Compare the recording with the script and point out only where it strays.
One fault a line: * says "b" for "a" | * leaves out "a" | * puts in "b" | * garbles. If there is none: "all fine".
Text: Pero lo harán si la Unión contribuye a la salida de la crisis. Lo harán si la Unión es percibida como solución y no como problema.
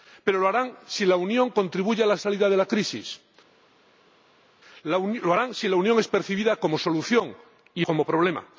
* leaves out "no"